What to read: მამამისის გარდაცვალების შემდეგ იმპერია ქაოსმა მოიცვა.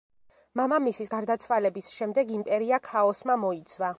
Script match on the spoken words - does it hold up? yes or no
yes